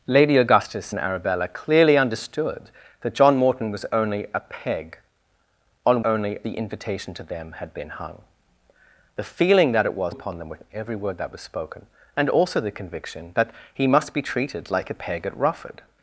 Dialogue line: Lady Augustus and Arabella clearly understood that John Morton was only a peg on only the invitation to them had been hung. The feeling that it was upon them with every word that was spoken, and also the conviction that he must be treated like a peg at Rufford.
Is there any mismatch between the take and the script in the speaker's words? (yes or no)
no